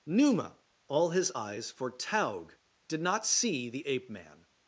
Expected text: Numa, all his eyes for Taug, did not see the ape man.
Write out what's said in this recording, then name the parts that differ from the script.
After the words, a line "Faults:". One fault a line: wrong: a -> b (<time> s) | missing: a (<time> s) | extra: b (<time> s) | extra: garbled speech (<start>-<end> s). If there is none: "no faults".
Numa, all his eyes for Taug, did not see the ape man.
Faults:
no faults